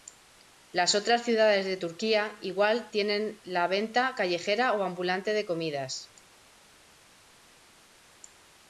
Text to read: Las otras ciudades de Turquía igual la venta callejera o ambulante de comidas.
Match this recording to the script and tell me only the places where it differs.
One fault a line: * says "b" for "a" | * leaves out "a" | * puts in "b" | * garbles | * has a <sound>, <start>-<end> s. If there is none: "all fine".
* puts in "tienen"